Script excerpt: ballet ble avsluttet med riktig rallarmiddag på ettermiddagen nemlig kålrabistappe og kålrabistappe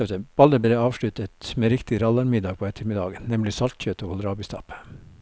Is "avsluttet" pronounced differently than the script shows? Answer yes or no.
no